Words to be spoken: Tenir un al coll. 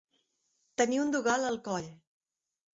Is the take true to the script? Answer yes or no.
no